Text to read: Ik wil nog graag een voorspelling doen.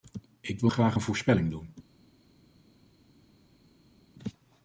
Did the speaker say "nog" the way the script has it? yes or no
no